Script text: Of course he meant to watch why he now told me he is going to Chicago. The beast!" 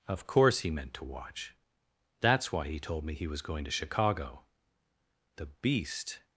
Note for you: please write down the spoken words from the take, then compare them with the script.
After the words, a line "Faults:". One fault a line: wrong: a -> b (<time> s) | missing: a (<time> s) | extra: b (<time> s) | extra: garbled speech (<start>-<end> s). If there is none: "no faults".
Of course he meant to watch that's why he told me he was going to Chicago. The beast!"
Faults:
extra: that's (2.2 s)
missing: now (2.8 s)
wrong: is -> was (3.2 s)